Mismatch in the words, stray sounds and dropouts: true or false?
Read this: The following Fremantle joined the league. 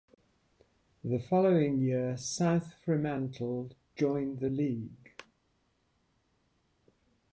true